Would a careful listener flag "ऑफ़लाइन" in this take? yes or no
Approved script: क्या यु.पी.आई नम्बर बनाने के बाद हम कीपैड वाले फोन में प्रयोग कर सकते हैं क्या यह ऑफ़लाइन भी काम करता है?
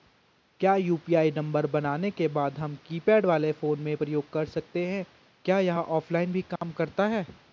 no